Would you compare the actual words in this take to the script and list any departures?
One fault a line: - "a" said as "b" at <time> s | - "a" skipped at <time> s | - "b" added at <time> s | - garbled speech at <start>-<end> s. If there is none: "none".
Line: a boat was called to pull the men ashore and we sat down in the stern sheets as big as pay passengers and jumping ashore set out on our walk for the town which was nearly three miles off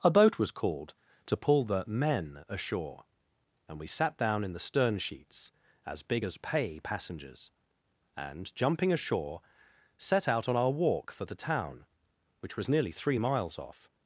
none